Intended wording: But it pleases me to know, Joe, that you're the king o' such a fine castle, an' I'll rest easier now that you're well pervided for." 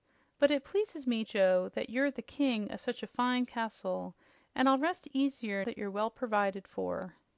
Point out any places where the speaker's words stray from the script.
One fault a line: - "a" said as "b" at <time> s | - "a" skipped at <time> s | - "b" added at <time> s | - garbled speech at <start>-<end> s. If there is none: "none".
- "to know" skipped at 1.2 s
- "now" skipped at 5.6 s